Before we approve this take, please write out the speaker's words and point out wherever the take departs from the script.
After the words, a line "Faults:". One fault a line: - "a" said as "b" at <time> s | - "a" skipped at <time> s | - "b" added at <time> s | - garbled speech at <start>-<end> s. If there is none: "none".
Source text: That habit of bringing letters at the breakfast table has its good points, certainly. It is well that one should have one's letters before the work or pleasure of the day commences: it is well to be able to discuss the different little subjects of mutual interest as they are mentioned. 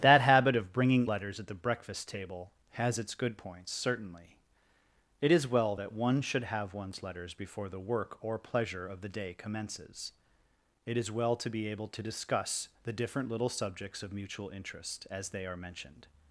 That habit of bringing letters at the breakfast table has its good points, certainly. It is well that one should have one's letters before the work or pleasure of the day commences: it is well to be able to discuss the different little subjects of mutual interest as they are mentioned.
Faults:
none